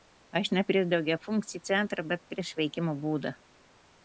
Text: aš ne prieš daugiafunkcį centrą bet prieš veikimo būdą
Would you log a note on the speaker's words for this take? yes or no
no